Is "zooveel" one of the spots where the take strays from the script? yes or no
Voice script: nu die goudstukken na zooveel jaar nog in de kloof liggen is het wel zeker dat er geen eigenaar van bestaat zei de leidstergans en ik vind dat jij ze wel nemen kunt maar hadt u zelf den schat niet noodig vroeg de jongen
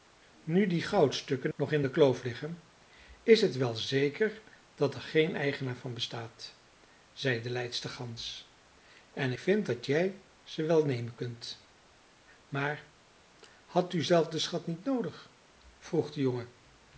yes